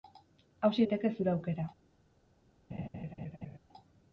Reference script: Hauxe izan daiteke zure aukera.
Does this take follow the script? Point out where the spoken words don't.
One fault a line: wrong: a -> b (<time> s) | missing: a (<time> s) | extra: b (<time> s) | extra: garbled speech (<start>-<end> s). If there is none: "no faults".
missing: izan (0.8 s)